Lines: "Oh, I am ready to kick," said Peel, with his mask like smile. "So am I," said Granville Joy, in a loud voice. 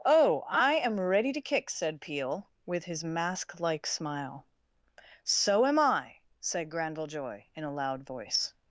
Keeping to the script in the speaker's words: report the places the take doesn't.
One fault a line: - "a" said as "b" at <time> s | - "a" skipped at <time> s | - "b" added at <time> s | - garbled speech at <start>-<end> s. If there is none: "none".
none